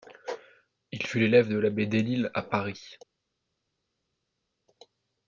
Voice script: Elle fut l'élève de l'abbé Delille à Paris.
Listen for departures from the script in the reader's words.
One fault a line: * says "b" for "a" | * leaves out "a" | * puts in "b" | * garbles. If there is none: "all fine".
* says "Il" for "Elle"